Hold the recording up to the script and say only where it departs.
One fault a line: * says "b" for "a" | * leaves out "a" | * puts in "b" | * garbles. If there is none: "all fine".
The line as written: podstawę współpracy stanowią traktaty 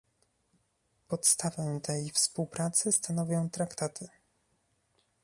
* puts in "tej"